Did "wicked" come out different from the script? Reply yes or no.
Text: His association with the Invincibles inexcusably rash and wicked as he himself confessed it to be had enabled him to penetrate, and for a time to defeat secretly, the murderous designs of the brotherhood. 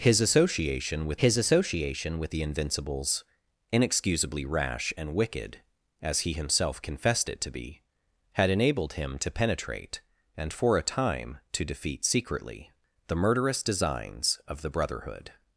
no